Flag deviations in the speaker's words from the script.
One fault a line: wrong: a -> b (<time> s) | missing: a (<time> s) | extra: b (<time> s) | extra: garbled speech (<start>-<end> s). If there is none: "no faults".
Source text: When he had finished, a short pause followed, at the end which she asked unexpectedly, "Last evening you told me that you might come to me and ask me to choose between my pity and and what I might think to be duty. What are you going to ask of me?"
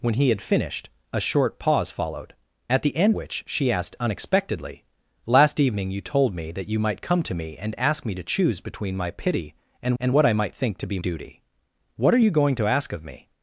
no faults